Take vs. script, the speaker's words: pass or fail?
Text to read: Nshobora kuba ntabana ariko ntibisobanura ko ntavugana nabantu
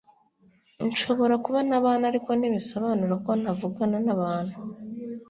pass